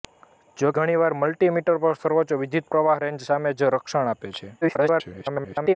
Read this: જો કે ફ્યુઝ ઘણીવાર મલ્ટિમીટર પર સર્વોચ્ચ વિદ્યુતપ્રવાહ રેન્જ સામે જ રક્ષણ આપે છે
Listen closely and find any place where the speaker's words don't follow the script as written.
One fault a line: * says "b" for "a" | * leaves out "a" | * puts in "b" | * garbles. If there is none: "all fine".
* leaves out "કે ફ્યુઝ"
* garbles